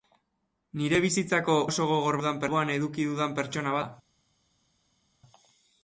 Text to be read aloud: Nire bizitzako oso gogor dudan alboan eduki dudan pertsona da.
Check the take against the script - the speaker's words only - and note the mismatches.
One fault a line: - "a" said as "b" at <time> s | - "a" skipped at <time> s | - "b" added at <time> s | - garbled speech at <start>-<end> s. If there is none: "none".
none